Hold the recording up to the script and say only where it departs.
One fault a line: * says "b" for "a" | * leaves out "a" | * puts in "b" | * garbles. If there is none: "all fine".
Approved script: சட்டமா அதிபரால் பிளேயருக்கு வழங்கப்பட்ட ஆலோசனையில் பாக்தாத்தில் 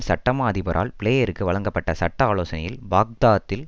* puts in "சட்ட"